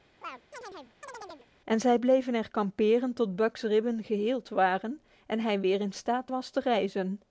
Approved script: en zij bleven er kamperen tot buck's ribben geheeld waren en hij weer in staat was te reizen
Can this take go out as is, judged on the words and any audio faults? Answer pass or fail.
fail